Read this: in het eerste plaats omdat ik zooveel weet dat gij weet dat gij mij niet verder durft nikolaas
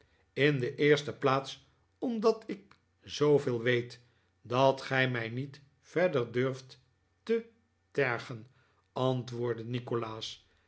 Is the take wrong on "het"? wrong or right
wrong